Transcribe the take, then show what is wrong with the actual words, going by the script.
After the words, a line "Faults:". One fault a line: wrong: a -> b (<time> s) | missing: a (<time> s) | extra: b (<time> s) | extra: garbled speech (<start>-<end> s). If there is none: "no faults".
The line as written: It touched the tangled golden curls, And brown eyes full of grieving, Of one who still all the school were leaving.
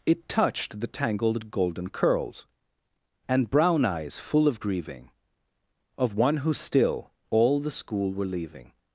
It touched the tangled golden curls, And brown eyes full of grieving, Of one who still all the school were leaving.
Faults:
no faults